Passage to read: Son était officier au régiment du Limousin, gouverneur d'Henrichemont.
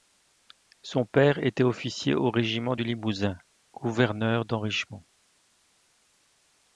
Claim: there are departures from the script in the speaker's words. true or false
true